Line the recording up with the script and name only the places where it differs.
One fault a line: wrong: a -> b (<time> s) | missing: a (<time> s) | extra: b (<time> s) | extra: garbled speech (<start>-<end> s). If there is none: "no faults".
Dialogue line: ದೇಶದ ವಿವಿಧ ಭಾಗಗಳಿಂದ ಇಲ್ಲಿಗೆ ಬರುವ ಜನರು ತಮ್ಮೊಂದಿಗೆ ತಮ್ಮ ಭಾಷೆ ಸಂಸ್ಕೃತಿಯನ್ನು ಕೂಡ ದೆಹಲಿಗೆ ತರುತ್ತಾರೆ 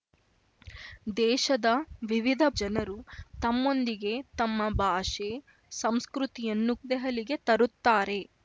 missing: ಭಾಗಗಳಿಂದ ಇಲ್ಲಿಗೆ ಬರುವ (2.4 s)
missing: ಕೂಡ (6.8 s)